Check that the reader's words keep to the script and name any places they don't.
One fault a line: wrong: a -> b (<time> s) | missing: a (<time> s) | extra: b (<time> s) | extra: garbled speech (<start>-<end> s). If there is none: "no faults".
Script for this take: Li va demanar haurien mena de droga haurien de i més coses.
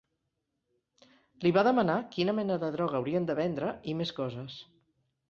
wrong: haurien -> quina (2.1 s)
extra: vendre (3.4 s)